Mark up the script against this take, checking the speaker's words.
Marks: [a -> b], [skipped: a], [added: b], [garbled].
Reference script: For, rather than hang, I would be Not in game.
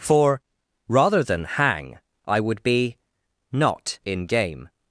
For, rather than hang, I would be Not in game.